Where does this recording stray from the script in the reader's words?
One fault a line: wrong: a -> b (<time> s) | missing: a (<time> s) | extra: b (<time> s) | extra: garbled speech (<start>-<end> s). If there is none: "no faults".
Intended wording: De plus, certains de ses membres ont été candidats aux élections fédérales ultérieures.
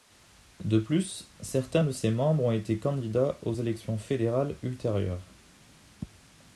no faults